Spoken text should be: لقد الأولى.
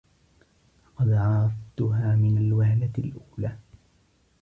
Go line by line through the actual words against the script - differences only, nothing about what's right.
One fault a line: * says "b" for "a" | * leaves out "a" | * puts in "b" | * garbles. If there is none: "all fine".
* puts in "عرفتها من الوهلة"